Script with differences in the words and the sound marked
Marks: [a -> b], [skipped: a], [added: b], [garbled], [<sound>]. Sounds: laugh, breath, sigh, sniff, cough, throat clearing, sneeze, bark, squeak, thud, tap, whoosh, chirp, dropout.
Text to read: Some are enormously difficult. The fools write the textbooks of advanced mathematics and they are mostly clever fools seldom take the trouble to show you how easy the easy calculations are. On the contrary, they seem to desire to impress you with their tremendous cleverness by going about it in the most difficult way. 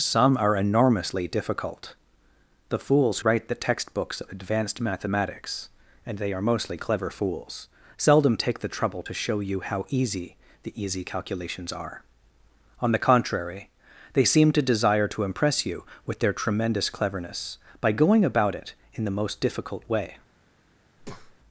Some are enormously difficult. The fools write the textbooks of advanced mathematics and they are mostly clever fools seldom take the trouble to show you how easy the easy calculations are. On the contrary, they seem to desire to impress you with their tremendous cleverness by going about it in the most difficult way. [breath]